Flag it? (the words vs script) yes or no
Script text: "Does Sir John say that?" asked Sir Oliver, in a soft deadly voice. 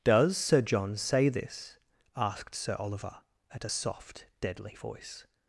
yes